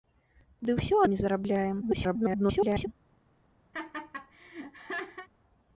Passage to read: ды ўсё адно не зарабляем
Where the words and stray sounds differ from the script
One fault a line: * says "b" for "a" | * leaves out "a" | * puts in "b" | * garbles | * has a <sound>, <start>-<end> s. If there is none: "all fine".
* leaves out "адно"
* garbles
* has a laugh, 3.7-5.3 s